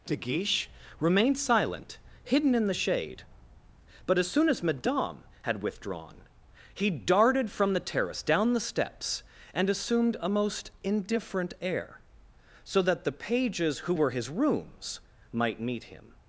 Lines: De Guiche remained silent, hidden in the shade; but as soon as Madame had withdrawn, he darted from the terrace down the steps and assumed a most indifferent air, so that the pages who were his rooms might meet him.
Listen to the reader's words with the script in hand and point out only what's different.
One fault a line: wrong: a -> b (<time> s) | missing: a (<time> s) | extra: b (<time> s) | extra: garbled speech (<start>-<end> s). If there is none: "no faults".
no faults